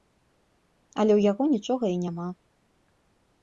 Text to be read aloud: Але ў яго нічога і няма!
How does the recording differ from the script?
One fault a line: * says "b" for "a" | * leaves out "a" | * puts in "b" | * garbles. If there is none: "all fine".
all fine